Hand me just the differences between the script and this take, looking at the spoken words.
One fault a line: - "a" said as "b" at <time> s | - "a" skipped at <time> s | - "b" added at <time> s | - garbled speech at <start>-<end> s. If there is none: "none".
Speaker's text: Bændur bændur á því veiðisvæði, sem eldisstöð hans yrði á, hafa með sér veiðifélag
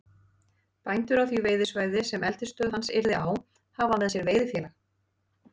- "bændur" skipped at 1.2 s